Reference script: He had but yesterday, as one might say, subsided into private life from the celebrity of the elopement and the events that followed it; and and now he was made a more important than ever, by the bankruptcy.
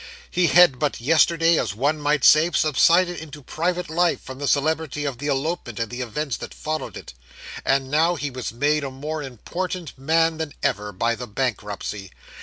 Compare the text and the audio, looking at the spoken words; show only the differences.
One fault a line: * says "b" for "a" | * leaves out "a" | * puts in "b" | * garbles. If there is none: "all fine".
* leaves out "and"
* puts in "man"